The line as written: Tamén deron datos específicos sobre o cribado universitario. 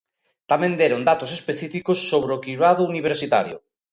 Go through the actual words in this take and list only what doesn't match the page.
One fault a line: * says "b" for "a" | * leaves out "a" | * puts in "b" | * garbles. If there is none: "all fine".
all fine